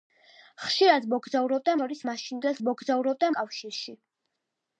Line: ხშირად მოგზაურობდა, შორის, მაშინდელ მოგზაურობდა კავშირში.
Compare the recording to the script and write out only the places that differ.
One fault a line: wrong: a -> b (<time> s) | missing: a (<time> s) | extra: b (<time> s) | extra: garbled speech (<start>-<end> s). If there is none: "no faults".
no faults